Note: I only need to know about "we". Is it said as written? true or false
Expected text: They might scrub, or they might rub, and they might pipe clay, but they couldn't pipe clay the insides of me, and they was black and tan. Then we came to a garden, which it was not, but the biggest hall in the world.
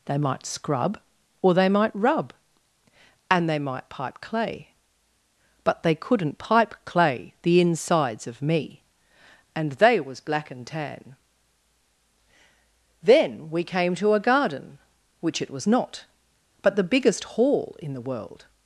true